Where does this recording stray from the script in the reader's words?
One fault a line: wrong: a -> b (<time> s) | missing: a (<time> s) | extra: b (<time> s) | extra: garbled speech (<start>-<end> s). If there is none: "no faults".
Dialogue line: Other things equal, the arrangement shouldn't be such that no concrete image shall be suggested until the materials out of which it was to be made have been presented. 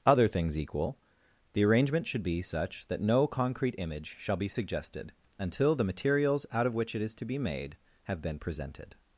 wrong: shouldn't -> should (2.1 s)
wrong: was -> is (7.0 s)